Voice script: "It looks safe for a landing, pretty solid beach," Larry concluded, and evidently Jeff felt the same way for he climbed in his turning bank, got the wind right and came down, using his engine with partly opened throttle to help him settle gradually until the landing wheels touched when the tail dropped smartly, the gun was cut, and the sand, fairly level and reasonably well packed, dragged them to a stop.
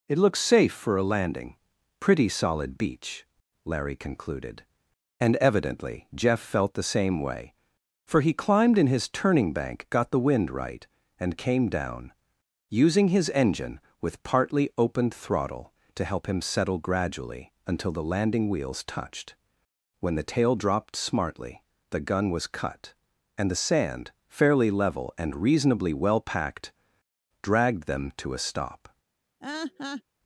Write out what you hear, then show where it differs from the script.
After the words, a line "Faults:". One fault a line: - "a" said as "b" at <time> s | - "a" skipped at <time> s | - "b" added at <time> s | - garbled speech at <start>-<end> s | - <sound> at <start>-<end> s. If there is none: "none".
"It looks safe for a landing, pretty solid beach," Larry concluded, and evidently Jeff felt the same way for he climbed in his turning bank, got the wind right and came down, using his engine with partly opened throttle to help him settle gradually until the landing wheels touched when the tail dropped smartly, the gun was cut, and the sand, fairly level and reasonably well packed, dragged them to a stop.
Faults:
- laugh at 29.4-30.0 s